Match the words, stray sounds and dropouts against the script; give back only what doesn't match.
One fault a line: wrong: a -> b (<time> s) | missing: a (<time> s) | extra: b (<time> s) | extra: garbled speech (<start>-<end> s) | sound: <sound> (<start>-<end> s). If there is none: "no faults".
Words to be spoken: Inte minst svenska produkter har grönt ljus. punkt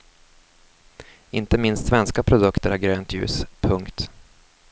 no faults